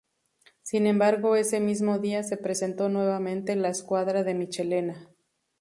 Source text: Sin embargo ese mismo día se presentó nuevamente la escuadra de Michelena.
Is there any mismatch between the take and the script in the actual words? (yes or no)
no